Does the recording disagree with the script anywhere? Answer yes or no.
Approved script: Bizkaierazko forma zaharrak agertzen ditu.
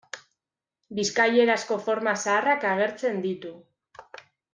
no